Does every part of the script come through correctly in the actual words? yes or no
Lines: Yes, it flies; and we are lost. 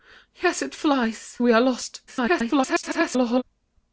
no